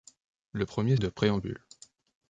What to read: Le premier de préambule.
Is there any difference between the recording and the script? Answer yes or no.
no